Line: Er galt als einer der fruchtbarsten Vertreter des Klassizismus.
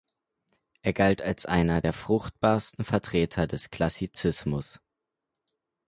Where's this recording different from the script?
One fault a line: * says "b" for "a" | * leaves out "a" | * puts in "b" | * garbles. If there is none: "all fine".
all fine